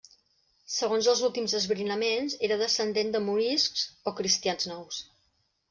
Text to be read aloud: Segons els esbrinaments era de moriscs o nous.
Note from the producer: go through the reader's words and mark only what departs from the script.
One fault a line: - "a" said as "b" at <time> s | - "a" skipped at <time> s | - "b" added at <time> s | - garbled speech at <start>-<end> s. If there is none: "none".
- "últims" added at 1.3 s
- "descendent" added at 2.6 s
- "cristians" added at 4.2 s